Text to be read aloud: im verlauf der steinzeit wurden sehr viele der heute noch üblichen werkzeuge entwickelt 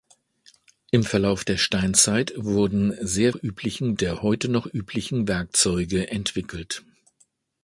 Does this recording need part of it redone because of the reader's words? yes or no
yes